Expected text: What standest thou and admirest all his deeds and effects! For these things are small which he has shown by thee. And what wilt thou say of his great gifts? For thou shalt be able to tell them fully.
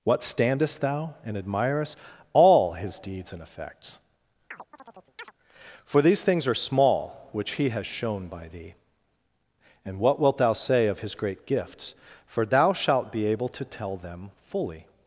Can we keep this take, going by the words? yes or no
yes